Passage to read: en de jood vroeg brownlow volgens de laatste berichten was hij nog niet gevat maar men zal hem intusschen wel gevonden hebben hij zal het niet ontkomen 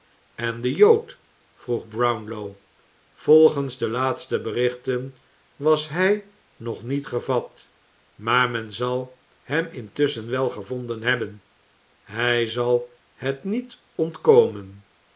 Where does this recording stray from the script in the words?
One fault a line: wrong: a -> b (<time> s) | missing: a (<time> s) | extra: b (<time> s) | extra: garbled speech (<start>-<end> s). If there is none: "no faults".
no faults